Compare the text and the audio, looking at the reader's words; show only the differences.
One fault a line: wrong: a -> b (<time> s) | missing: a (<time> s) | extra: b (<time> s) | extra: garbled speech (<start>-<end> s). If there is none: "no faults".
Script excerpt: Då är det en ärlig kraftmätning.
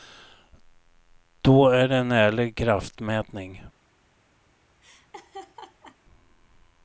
no faults